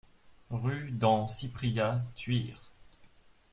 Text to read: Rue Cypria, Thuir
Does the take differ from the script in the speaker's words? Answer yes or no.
yes